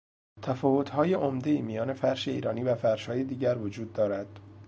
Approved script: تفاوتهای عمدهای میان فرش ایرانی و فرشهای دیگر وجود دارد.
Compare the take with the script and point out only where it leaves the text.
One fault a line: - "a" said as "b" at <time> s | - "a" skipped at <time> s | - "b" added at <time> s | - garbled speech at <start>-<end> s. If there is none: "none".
none